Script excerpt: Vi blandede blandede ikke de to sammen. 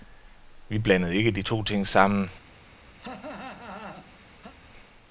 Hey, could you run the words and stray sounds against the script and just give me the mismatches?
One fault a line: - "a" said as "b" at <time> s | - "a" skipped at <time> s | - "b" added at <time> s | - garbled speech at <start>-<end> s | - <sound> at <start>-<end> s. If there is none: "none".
- "blandede" skipped at 1.1 s
- "ting" added at 1.6 s
- cough at 3.0-4.5 s